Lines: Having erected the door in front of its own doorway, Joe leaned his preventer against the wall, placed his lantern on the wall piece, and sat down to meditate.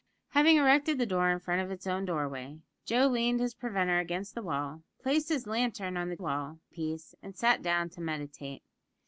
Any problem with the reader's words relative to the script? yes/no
no